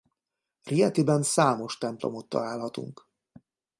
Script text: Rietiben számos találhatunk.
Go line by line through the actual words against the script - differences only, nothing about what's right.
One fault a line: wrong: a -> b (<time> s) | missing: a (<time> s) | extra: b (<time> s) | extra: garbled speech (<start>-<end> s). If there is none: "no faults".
extra: templomot (1.8 s)